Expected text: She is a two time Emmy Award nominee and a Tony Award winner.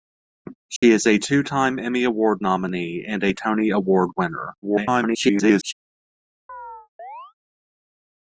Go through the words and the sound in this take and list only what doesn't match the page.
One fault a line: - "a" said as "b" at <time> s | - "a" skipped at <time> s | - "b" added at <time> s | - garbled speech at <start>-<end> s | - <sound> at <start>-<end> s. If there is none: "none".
- dropout at 0.8-0.8 s
- garbled speech at 4.6-5.7 s
- chirp at 6.5-7.3 s